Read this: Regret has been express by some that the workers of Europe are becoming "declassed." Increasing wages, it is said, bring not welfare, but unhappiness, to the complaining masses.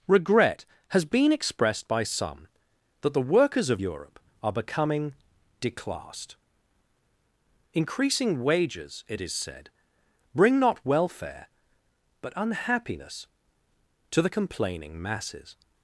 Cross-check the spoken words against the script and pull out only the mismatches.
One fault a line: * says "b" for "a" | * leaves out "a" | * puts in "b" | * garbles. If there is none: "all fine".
* says "expressed" for "express"